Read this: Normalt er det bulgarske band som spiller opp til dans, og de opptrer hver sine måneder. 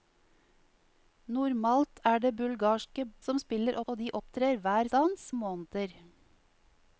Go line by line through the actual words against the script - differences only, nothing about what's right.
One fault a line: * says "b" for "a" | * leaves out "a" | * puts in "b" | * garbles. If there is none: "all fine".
* leaves out "band"
* leaves out "opp til dans"
* says "dans" for "sine"